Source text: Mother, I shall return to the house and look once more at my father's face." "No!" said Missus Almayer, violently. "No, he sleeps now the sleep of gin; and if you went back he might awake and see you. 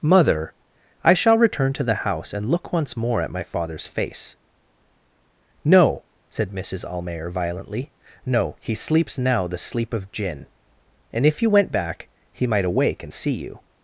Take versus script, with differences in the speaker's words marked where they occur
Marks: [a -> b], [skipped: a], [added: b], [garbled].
Mother, I shall return to the house and look once more at my father's face." "No!" said Missus Almayer, violently. "No, he sleeps now the sleep of gin; and if you went back he might awake and see you.